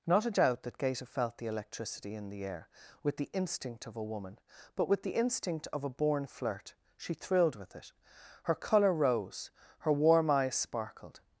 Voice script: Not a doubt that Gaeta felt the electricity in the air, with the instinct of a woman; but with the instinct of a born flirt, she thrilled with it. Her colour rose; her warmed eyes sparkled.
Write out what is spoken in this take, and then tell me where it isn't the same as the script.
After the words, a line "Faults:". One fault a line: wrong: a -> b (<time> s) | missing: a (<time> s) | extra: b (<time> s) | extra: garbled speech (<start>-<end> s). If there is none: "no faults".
Not a doubt that Gaeta felt the electricity in the air, with the instinct of a woman; but with the instinct of a born flirt, she thrilled with it. Her colour rose; her warm eyes sparkled.
Faults:
wrong: warmed -> warm (9.9 s)